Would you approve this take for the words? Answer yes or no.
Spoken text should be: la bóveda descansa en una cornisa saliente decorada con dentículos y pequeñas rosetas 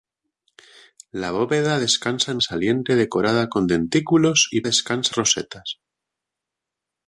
no